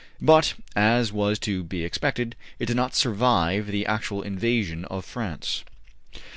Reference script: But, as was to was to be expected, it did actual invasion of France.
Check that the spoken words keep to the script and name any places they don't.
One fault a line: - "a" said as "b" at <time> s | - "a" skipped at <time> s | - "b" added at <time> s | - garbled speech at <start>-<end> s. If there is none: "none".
- "was to" skipped at 1.6 s
- "not survive the" added at 2.8 s